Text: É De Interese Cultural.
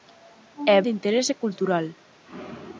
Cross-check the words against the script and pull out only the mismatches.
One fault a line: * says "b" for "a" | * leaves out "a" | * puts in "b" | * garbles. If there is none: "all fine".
all fine